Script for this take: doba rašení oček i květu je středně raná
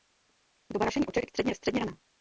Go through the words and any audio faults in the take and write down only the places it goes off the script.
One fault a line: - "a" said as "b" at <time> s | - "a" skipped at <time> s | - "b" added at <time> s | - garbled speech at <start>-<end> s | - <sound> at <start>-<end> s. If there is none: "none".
- "květu" said as "středně" at 1.3 s